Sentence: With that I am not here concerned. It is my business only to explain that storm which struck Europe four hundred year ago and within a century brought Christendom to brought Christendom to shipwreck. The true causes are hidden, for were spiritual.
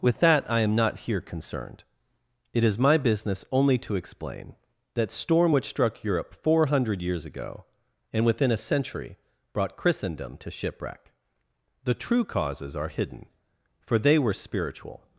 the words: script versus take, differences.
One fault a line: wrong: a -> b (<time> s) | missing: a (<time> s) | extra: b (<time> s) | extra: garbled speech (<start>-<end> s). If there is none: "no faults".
wrong: year -> years (7.0 s)
missing: brought Christendom to (10.5 s)
extra: they (14.0 s)